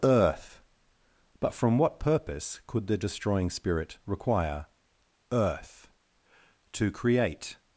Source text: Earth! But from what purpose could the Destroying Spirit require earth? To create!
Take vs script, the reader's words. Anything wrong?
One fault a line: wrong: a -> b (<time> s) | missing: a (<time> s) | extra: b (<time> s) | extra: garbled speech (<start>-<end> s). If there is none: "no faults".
no faults